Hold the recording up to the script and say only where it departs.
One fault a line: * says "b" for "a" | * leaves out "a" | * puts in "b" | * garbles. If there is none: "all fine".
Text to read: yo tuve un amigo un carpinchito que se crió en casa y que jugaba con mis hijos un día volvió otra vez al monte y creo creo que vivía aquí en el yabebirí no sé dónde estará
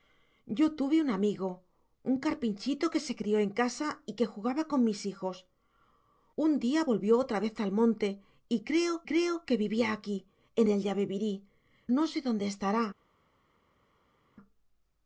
all fine